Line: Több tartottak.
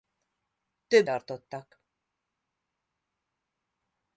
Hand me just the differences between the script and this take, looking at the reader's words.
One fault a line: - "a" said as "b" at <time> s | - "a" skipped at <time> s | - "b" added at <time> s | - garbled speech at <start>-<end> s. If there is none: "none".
none